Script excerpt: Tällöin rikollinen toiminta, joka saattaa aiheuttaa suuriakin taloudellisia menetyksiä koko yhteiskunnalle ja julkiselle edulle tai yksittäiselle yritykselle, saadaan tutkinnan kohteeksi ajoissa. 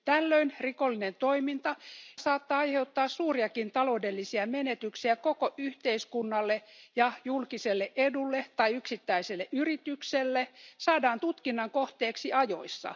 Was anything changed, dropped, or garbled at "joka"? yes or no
yes